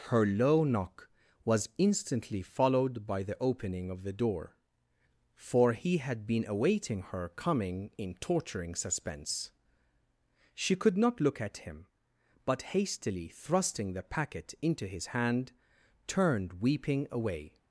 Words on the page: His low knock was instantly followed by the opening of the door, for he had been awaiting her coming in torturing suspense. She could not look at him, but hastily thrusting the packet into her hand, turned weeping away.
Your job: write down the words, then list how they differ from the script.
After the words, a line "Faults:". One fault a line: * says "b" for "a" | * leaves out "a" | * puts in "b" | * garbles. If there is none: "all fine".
Her low knock was instantly followed by the opening of the door, for he had been awaiting her coming in torturing suspense. She could not look at him, but hastily thrusting the packet into his hand, turned weeping away.
Faults:
* says "Her" for "His"
* says "his" for "her"